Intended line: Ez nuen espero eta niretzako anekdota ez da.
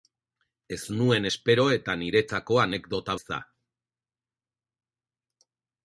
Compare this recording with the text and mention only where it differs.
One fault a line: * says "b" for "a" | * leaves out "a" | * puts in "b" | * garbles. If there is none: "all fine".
all fine